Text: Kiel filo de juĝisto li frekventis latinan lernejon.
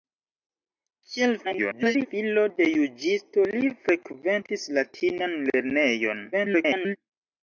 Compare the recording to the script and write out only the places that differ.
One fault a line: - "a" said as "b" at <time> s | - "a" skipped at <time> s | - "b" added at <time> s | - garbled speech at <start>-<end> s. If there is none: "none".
- garbled speech at 1.4-2.1 s
- garbled speech at 6.3-7.0 s